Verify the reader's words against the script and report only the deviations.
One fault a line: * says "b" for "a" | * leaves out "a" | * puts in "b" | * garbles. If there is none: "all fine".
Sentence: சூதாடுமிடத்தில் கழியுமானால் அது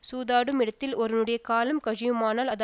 * puts in "ஒருவனுடைய காலம்"